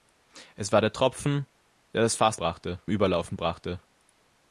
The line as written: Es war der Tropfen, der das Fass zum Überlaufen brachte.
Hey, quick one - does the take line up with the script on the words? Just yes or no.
no